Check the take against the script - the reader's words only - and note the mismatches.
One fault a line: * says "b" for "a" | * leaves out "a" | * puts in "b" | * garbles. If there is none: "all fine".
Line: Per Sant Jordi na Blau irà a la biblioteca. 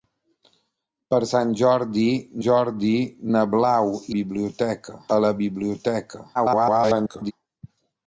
* puts in "Jordi"
* says "biblioteca" for "irà"
* garbles